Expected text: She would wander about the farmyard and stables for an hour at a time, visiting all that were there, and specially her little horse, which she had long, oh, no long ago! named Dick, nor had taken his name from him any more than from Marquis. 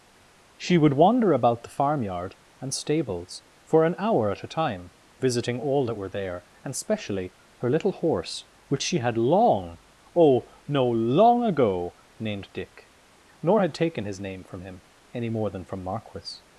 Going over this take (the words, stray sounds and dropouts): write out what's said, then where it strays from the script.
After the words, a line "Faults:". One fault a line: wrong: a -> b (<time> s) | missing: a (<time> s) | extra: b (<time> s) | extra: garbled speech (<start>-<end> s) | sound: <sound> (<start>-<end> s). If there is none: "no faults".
She would wander about the farmyard and stables for an hour at a time, visiting all that were there, and specially her little horse, which she had long, oh, no long ago! named Dick, nor had taken his name from him any more than from Marquis.
Faults:
no faults